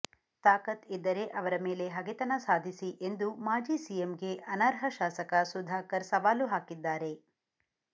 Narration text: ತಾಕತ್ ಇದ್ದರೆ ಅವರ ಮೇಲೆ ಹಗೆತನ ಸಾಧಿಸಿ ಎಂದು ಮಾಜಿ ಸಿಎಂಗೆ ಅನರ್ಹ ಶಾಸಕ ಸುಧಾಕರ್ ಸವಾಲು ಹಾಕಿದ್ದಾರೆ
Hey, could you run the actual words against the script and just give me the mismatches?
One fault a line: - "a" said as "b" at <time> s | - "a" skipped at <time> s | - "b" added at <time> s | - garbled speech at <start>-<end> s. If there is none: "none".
none